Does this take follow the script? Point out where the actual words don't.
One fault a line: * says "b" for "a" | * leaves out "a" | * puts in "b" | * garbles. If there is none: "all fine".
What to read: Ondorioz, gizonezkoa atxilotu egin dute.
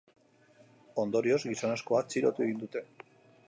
all fine